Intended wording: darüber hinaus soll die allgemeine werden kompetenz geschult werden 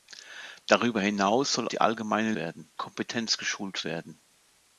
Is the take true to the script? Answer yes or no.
yes